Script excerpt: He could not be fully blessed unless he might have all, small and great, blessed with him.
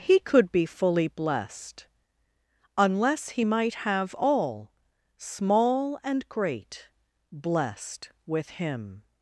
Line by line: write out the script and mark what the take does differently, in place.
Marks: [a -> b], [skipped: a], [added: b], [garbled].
He could [skipped: not] be fully blessed unless he might have all, small and great, blessed with him.